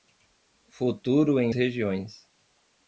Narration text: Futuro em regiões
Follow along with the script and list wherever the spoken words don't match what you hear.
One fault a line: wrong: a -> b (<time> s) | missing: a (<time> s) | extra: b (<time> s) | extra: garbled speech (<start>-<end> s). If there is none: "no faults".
no faults